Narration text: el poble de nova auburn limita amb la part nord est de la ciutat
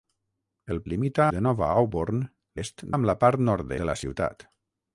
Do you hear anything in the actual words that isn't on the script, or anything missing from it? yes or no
yes